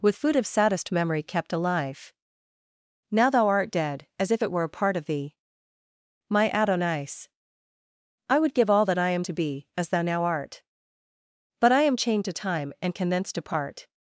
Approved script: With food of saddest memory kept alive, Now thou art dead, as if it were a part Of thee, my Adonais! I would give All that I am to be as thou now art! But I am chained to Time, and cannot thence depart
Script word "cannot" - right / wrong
wrong